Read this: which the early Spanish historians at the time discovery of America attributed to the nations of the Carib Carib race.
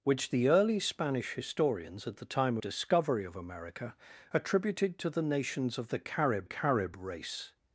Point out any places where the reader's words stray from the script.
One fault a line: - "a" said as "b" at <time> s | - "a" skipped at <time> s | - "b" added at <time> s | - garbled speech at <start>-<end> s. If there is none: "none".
none